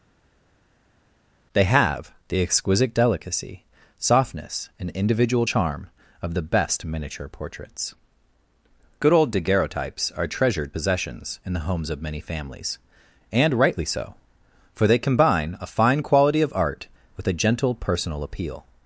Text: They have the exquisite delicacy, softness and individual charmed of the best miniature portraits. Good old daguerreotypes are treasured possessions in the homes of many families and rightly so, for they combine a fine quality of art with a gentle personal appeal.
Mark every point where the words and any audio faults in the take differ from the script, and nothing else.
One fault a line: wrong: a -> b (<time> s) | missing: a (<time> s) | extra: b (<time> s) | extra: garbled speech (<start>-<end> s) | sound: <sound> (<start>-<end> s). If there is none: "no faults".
wrong: charmed -> charm (5.4 s)